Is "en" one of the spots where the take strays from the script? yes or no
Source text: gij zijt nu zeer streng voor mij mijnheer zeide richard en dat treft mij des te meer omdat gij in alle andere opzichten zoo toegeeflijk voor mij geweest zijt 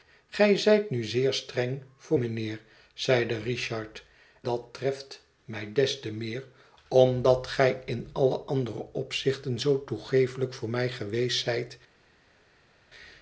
yes